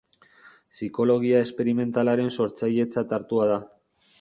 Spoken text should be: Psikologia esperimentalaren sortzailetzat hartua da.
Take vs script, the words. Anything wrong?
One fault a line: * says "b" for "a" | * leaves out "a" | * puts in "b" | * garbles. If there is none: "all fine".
all fine